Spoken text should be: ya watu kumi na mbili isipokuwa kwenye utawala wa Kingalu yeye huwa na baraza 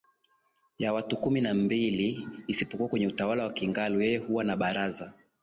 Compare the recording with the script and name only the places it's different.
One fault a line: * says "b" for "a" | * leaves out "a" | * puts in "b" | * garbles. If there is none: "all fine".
all fine